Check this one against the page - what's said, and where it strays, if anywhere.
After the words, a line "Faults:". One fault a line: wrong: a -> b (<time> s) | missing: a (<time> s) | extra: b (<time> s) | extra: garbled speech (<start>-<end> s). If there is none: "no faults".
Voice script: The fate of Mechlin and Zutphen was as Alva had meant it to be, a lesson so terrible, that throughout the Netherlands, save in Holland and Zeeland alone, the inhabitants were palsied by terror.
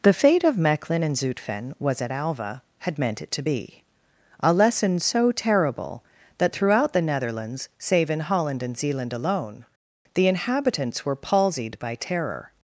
The fate of Mechlin and Zutphen was at Alva had meant it to be, a lesson so terrible, that throughout the Netherlands, save in Holland and Zeeland alone, the inhabitants were palsied by terror.
Faults:
wrong: as -> at (2.0 s)